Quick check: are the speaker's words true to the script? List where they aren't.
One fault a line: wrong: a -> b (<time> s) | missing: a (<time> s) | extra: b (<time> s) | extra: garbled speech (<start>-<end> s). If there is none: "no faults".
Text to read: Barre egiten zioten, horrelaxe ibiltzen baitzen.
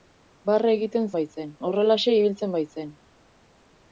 wrong: zioten -> baitzen (1.2 s)